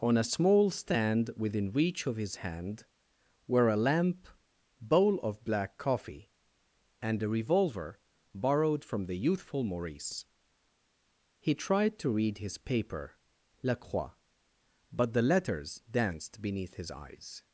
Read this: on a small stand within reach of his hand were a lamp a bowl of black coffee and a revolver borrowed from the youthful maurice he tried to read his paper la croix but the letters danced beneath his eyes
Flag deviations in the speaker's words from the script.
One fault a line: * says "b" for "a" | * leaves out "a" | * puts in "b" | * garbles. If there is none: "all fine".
* leaves out "a"